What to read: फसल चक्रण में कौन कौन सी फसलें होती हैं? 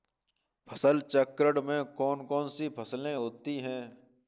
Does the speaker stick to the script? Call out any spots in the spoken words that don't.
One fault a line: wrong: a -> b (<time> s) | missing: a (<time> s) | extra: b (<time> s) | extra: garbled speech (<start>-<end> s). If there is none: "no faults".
no faults